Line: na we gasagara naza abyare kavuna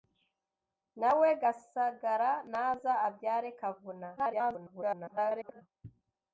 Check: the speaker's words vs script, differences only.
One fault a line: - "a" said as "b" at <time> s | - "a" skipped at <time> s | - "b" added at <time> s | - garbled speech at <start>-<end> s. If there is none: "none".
- garbled speech at 4.2-5.6 s